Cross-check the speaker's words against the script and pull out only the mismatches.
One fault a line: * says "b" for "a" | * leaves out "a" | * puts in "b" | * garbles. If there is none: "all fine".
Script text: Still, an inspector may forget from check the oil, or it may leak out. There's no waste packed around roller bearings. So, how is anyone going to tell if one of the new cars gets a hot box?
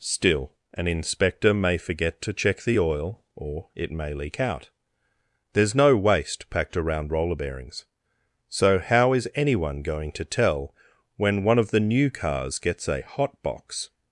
* says "to" for "from"
* says "when" for "if"